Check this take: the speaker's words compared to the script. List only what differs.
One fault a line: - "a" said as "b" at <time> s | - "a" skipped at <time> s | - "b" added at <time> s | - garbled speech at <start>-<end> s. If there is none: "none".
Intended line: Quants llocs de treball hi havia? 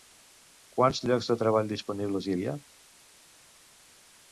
- "disponibles" added at 1.7 s